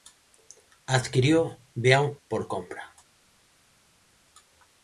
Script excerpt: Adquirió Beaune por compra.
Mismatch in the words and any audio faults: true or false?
false